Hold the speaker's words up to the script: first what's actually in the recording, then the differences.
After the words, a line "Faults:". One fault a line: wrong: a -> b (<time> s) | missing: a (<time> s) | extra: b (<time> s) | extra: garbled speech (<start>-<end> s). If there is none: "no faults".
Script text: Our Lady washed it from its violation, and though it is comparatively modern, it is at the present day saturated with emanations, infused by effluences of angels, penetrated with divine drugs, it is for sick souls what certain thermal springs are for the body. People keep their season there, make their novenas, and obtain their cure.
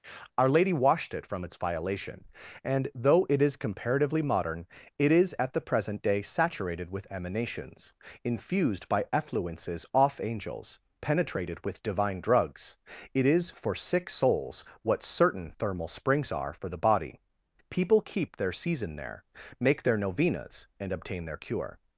Our Lady washed it from its violation, and though it is comparatively modern, it is at the present day saturated with emanations, infused by effluences off angels, penetrated with divine drugs, it is for sick souls what certain thermal springs are for the body. People keep their season there, make their novenas, and obtain their cure.
Faults:
wrong: of -> off (9.9 s)